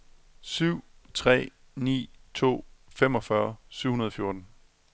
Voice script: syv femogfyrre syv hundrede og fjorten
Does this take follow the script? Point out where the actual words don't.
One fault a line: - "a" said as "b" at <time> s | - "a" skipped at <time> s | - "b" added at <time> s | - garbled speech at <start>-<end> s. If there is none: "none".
- "tre ni to" added at 1.1 s